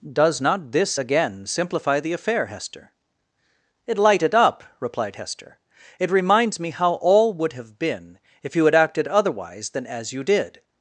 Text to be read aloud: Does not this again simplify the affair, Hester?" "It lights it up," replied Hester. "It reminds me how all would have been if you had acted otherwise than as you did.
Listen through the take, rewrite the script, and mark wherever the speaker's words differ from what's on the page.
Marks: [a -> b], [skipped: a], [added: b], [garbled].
Does not this again simplify the affair, Hester?" "It [lights -> light] it up," replied Hester. "It reminds me how all would have been if you had acted otherwise than as you did.